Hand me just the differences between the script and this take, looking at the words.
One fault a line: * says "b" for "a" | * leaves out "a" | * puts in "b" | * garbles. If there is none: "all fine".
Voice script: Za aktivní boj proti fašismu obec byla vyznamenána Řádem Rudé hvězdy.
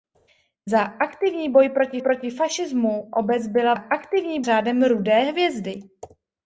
* puts in "proti"
* says "aktivní" for "vyznamenána"